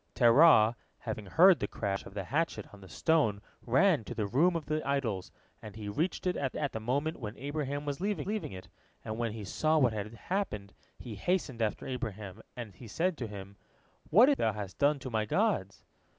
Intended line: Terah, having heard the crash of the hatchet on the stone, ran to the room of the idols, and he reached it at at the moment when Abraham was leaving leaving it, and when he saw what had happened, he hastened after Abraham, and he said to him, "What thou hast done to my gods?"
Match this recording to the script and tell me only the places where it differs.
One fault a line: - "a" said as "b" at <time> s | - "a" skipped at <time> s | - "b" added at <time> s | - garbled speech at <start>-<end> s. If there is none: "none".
none